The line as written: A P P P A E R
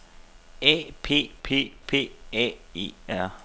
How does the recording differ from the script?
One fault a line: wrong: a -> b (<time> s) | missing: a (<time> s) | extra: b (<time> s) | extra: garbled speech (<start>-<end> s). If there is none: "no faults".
no faults